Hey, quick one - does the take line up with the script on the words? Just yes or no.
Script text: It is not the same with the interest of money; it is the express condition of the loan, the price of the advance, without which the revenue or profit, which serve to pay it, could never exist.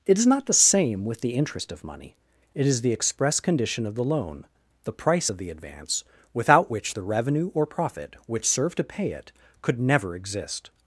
yes